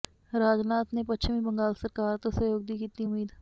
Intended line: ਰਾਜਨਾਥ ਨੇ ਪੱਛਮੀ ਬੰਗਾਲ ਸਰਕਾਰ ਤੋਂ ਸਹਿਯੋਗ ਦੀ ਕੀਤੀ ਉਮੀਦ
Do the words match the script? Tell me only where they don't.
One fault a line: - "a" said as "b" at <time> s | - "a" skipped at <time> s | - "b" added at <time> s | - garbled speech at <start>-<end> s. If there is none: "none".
none